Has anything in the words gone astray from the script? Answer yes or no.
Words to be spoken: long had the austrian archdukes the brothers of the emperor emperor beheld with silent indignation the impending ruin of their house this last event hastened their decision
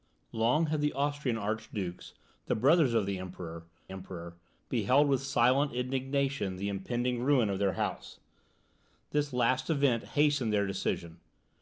no